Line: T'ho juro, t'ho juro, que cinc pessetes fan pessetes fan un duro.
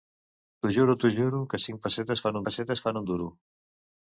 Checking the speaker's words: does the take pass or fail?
pass